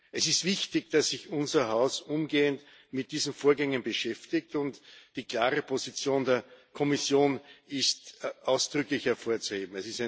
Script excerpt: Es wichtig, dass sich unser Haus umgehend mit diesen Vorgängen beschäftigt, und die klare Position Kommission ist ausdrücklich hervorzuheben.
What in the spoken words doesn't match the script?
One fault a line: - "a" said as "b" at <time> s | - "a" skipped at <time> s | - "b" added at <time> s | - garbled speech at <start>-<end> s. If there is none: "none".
- "ist" added at 0.3 s
- "der" added at 6.2 s